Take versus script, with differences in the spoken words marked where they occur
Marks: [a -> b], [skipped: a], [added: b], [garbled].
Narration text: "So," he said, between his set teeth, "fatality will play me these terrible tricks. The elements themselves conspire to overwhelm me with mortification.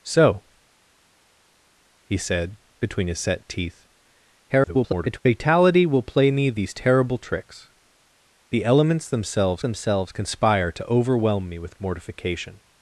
"So," he said, between his set teeth, [garbled] "fatality will play me these terrible tricks. The elements themselves [added: themselves] conspire to overwhelm me with mortification.